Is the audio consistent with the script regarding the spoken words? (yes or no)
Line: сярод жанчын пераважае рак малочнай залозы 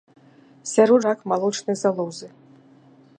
no